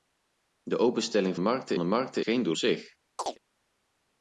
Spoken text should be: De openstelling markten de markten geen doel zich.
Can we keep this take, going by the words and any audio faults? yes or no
no